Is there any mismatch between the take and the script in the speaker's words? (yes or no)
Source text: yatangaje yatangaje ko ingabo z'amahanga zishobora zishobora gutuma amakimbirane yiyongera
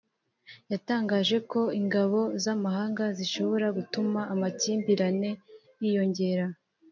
yes